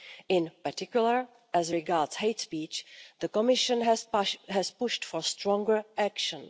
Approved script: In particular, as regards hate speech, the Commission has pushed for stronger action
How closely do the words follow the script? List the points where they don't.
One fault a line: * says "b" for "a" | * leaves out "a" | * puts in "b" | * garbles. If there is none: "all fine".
all fine